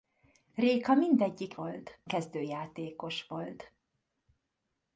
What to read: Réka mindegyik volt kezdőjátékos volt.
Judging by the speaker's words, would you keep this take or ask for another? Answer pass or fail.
pass